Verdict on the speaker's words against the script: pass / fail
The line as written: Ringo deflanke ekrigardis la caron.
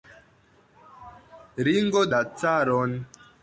fail